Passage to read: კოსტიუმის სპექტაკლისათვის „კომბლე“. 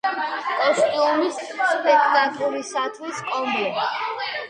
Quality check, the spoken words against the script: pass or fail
pass